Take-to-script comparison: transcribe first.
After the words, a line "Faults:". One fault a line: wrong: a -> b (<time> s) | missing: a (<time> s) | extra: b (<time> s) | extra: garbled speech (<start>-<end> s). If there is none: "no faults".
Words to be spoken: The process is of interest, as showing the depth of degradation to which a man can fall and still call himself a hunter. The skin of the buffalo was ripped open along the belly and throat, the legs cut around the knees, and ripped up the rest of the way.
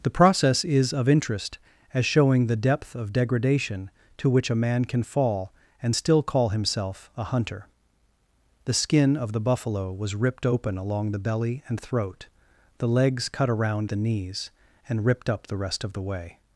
The process is of interest, as showing the depth of degradation to which a man can fall and still call himself a hunter. The skin of the buffalo was ripped open along the belly and throat, the legs cut around the knees, and ripped up the rest of the way.
Faults:
no faults